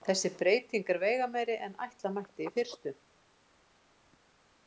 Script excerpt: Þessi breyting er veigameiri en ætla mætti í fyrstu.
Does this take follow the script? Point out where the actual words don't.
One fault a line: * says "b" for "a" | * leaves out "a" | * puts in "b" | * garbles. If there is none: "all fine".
all fine